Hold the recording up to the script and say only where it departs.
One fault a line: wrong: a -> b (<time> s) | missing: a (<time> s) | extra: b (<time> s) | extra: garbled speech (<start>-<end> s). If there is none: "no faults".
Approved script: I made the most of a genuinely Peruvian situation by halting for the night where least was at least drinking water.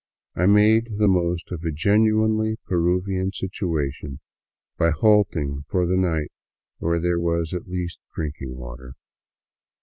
wrong: least -> there (7.0 s)